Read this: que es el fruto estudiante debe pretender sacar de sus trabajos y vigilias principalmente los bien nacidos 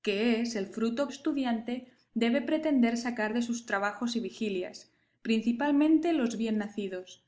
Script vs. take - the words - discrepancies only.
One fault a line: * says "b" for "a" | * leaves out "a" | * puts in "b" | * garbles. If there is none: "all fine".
all fine